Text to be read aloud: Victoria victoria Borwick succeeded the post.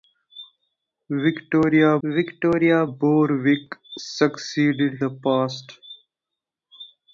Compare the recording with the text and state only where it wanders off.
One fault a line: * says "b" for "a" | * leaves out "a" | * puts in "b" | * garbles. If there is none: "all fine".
all fine